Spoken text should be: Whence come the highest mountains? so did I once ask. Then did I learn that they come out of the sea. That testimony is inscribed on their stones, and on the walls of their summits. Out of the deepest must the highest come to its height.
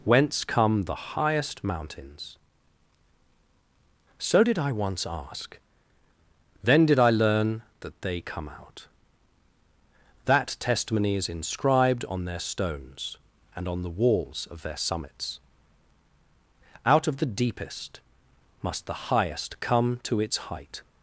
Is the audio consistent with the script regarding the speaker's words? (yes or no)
no